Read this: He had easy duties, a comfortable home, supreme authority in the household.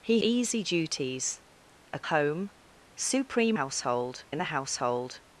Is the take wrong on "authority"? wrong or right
wrong